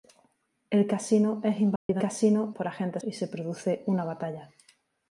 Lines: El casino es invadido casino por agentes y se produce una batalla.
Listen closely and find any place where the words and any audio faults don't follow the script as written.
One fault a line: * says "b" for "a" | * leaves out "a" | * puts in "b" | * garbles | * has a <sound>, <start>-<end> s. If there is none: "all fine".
* has a dropout, 1.8-1.9 s